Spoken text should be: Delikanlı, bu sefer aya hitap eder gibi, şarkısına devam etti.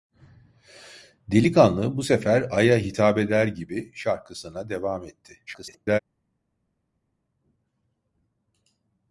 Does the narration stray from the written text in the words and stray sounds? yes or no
yes